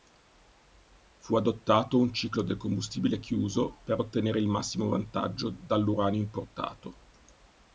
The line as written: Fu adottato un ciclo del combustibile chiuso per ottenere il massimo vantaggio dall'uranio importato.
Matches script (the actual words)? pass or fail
pass